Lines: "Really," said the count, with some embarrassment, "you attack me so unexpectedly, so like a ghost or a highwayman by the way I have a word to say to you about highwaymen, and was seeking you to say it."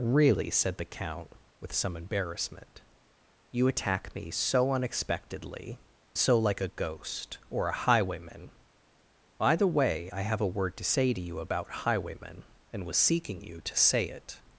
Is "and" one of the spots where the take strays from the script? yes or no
no